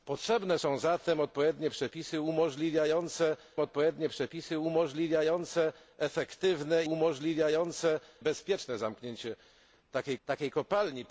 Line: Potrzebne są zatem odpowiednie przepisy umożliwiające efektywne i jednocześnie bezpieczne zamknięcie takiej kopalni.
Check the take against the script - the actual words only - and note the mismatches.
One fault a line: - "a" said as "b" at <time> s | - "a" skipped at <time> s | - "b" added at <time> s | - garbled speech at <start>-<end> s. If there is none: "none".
- "odpowiednie przepisy umożliwiające" added at 3.6 s
- "jednocześnie" said as "umożliwiające" at 6.8 s
- "takiej" added at 10.2 s